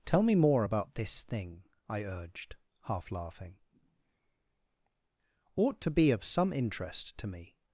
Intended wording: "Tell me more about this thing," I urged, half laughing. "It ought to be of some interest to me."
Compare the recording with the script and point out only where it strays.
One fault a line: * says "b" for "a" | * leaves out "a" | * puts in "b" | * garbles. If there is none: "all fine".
* leaves out "It"